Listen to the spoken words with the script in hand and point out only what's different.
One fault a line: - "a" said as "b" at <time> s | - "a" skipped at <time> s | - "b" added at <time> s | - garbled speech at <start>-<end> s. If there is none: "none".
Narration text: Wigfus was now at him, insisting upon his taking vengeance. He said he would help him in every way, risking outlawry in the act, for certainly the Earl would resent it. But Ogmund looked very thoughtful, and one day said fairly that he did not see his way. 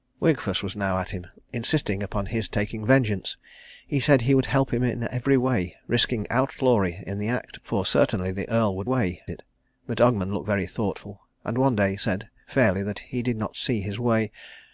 - "resent" said as "way" at 8.8 s